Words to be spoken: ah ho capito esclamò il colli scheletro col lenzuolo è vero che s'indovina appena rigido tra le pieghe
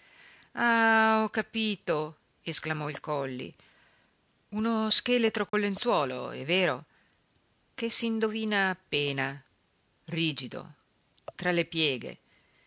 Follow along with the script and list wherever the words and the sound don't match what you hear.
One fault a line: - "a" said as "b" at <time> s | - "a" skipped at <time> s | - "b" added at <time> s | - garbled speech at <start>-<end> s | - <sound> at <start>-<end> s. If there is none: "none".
- "uno" added at 4.5 s
- dropout at 5.5-5.5 s